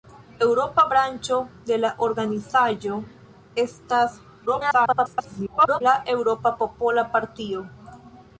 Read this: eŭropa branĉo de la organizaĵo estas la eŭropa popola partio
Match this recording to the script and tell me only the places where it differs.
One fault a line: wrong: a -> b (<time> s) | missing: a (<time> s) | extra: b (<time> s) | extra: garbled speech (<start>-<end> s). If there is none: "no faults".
extra: garbled speech (4.5-5.8 s)